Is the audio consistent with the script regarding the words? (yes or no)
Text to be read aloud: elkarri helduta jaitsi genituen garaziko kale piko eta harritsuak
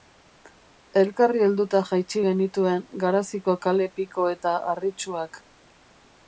yes